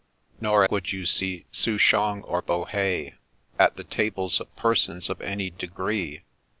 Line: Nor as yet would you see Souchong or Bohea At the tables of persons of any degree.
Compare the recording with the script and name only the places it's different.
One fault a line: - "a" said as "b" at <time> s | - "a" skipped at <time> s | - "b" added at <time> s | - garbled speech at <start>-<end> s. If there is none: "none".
- "as yet" skipped at 0.6 s